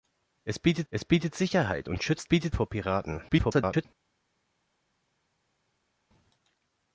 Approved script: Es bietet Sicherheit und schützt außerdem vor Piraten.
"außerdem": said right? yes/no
no